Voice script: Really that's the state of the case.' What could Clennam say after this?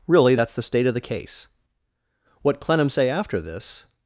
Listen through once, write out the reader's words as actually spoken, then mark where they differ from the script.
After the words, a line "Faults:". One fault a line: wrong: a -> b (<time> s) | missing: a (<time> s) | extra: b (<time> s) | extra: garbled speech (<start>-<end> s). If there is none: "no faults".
Really that's the state of the case.' What Clennam say after this?
Faults:
missing: could (2.6 s)